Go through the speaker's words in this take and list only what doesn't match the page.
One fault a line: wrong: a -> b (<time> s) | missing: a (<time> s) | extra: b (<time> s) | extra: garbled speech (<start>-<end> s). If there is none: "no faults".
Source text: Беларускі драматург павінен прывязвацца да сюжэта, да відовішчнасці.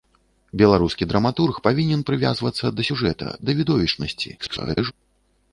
extra: garbled speech (4.4-4.9 s)